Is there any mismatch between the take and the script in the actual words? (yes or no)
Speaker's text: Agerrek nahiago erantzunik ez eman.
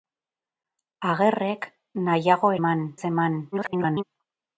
yes